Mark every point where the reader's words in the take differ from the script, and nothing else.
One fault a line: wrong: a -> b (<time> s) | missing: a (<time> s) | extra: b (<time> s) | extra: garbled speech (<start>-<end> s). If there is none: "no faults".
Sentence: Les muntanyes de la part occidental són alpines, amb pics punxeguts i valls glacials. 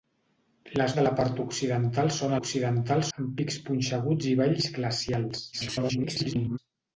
missing: muntanyes (0.9 s)
wrong: alpines -> occidental (2.4 s)
extra: garbled speech (5.5-6.6 s)